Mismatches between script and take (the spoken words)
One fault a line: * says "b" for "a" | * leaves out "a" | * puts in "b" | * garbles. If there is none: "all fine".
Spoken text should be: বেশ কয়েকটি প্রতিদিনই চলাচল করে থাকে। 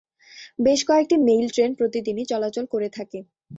* puts in "মেইল ট্রেন"